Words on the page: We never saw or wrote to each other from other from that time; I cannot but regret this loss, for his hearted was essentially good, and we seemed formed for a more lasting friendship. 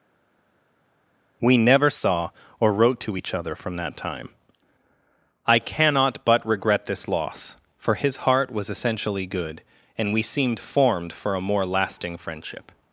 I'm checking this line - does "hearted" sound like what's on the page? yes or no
no